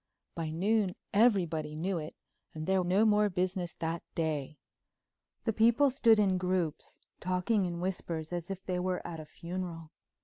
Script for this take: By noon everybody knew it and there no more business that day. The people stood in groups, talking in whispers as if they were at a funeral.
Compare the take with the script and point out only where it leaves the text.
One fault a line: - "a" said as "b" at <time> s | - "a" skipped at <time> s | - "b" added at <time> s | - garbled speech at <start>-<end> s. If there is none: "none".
none